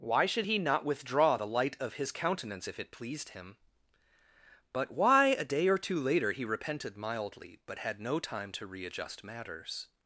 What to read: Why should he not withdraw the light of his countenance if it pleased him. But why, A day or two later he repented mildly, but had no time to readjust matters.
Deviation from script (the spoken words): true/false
false